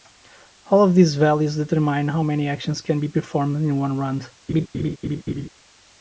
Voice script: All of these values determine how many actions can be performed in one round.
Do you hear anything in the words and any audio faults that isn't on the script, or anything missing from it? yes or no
yes